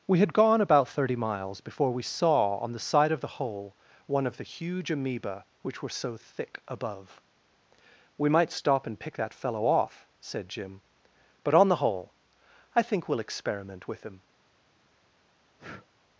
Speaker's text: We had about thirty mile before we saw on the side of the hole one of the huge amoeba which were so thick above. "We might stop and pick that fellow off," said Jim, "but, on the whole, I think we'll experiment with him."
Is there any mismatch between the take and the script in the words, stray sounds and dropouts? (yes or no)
yes